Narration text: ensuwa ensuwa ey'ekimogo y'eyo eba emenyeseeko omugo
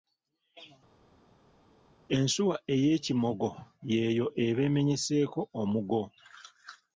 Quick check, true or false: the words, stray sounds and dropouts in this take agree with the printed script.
false